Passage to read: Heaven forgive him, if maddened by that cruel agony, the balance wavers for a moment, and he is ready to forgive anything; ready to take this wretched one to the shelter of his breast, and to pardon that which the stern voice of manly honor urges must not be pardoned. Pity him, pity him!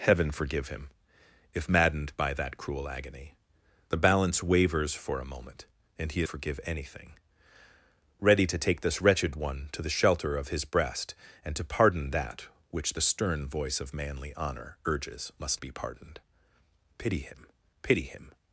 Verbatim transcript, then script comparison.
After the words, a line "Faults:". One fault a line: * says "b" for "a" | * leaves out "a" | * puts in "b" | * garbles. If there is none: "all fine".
Heaven forgive him, if maddened by that cruel agony, the balance wavers for a moment, and he forgive anything; ready to take this wretched one to the shelter of his breast, and to pardon that which the stern voice of manly honor urges must be pardoned. Pity him, pity him!
Faults:
* leaves out "is ready to"
* leaves out "not"